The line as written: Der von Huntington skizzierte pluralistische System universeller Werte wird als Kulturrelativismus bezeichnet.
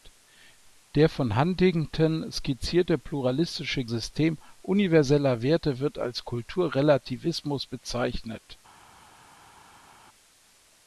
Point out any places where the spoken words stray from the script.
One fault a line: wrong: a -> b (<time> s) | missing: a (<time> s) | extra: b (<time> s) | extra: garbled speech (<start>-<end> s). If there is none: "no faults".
no faults